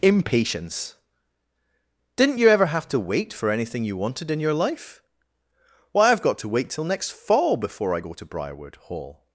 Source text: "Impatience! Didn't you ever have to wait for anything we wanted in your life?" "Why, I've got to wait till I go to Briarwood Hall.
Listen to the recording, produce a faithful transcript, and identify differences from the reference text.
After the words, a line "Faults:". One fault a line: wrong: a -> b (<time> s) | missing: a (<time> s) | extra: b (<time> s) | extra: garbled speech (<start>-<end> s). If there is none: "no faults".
"Impatience! Didn't you ever have to wait for anything you wanted in your life?" "Why, I've got to wait till next fall before I go to Briarwood Hall.
Faults:
wrong: we -> you (3.8 s)
extra: next fall before (6.8 s)